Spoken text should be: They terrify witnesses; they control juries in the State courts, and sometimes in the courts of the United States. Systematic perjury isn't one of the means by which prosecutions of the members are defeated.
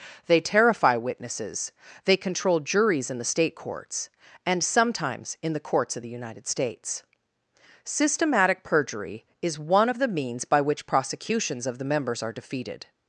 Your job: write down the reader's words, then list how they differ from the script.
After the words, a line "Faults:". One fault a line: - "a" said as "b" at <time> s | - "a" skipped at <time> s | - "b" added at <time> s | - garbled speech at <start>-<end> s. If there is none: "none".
They terrify witnesses; they control juries in the State courts, and sometimes in the courts of the United States. Systematic perjury is one of the means by which prosecutions of the members are defeated.
Faults:
- "isn't" said as "is" at 9.4 s